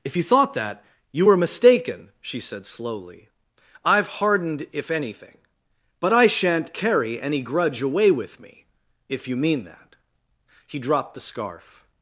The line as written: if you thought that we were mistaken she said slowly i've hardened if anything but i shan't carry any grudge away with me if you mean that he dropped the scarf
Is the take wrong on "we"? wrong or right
wrong